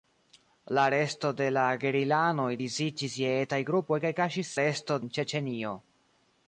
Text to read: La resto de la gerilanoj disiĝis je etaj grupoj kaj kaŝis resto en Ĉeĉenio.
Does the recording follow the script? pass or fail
pass